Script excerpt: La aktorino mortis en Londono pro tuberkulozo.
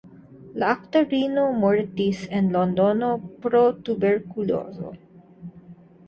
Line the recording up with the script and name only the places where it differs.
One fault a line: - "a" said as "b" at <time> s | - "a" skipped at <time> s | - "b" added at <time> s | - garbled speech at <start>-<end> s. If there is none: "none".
none